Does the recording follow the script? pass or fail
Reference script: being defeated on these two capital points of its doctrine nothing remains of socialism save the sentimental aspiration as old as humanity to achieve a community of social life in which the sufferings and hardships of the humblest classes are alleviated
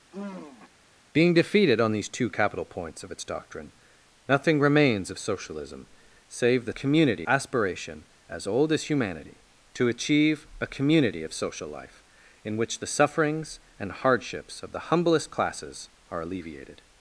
fail